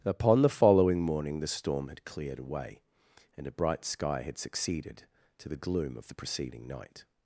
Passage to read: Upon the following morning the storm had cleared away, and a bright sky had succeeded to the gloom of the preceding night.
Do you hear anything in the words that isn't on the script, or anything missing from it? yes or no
no